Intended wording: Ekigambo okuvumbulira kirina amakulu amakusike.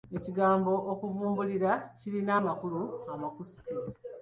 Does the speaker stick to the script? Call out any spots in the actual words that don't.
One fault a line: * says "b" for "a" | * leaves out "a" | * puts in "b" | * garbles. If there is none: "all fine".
all fine